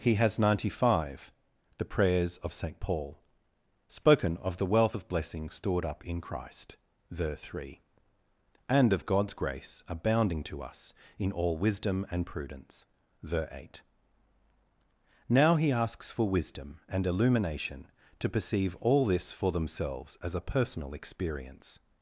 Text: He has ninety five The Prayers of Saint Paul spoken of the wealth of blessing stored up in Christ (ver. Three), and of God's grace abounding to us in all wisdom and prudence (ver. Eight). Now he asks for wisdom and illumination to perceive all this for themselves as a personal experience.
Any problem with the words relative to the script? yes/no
no